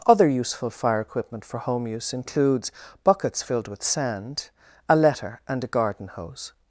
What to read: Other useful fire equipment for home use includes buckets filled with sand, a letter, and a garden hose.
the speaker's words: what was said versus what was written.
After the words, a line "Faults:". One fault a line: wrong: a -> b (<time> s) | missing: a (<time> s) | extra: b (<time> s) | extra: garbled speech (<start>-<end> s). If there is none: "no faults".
Other useful fire equipment for home use includes buckets filled with sand, a letter, and a garden hose.
Faults:
no faults